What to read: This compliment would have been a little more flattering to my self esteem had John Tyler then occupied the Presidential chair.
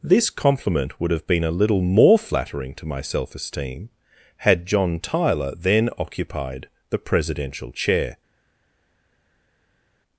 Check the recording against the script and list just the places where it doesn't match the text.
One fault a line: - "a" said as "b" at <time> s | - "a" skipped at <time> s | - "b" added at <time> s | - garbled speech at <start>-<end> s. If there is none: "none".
none